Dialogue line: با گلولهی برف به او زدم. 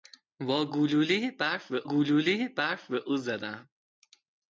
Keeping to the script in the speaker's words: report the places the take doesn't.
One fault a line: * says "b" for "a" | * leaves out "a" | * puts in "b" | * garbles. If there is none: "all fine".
* puts in "گلولهی برف به"